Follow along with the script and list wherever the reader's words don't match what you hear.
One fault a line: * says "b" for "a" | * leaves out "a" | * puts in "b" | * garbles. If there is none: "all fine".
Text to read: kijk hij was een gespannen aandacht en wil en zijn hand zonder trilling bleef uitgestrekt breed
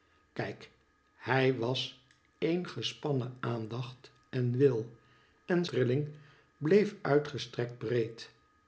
* leaves out "zijn hand zonder"